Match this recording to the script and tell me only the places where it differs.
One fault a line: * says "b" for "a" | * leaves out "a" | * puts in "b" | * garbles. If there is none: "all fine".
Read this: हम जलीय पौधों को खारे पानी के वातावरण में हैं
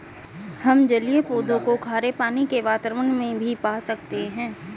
* puts in "भी पा सकते"